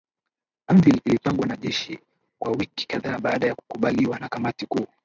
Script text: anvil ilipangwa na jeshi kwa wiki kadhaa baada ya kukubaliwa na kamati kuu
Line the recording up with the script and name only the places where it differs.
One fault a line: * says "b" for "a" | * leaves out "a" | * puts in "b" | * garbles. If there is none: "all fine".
all fine